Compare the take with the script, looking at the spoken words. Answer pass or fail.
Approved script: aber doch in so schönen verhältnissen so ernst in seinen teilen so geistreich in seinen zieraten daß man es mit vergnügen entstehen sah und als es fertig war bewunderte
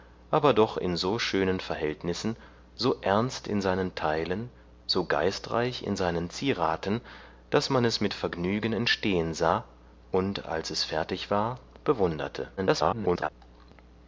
fail